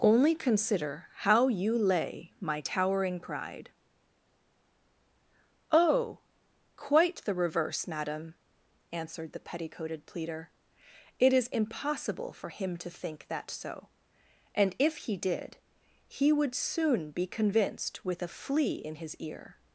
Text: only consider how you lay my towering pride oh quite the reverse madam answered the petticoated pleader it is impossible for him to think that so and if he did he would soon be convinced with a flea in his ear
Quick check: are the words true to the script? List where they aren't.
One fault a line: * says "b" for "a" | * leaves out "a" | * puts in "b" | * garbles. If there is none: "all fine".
all fine